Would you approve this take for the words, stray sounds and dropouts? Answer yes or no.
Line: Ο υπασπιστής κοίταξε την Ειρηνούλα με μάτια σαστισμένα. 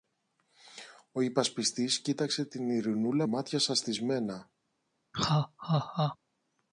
no